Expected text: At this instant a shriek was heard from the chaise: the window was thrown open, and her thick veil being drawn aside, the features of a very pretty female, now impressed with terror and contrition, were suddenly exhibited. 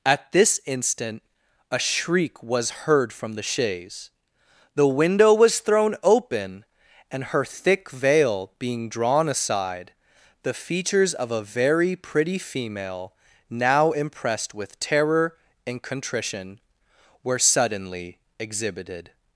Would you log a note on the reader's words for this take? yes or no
no